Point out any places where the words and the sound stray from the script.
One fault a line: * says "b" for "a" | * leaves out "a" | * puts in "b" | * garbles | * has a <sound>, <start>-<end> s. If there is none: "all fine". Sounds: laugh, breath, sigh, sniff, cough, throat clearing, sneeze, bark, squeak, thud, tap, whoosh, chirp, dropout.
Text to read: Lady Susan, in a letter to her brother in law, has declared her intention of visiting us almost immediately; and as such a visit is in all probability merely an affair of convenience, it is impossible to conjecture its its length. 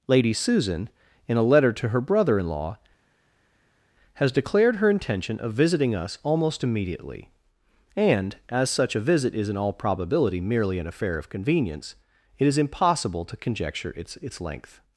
all fine